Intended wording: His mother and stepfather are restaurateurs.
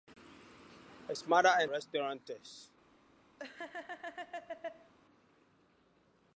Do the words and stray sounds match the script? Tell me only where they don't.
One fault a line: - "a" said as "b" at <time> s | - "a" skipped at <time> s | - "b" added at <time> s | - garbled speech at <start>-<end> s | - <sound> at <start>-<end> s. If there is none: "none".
- "stepfather are" skipped at 1.7 s
- laugh at 3.4-4.9 s